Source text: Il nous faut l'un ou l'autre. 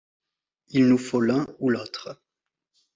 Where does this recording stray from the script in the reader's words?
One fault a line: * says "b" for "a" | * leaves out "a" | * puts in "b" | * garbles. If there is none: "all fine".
all fine